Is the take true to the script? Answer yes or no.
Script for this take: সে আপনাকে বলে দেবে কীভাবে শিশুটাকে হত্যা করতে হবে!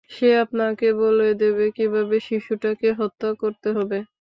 yes